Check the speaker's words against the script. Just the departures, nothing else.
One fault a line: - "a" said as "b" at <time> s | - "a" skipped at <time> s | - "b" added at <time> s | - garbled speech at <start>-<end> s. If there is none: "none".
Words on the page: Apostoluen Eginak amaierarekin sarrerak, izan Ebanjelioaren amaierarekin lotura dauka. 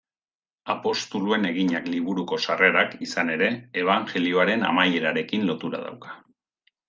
- "amaierarekin" said as "liburuko" at 1.9 s
- "ere" added at 3.4 s